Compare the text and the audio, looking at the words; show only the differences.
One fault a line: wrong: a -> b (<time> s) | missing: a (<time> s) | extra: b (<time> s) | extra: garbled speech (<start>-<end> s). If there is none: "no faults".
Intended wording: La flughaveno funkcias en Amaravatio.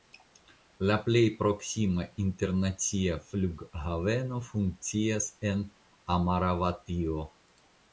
extra: plej proksima internacia (1.1 s)